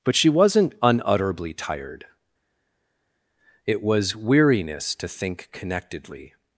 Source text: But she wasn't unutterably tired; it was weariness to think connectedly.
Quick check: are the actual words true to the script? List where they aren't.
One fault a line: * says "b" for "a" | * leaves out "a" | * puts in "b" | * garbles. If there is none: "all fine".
all fine